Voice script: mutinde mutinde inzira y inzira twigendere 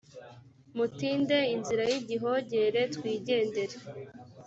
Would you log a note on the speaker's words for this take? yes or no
yes